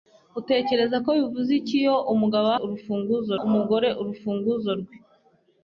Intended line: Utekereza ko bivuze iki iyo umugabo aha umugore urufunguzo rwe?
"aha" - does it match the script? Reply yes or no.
no